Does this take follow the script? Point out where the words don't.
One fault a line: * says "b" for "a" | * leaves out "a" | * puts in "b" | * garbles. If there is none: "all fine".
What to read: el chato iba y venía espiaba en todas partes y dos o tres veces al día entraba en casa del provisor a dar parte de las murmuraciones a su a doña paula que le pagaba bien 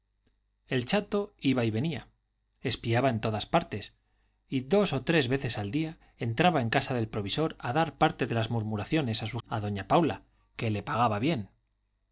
all fine